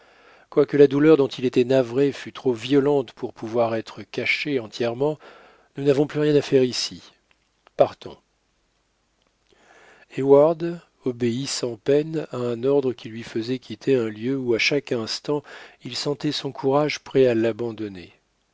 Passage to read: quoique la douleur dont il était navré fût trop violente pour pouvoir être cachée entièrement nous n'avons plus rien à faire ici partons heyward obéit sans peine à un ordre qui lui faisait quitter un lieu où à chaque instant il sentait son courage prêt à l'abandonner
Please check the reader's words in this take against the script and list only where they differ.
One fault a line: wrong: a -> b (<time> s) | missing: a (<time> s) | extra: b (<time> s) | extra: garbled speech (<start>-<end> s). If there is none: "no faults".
no faults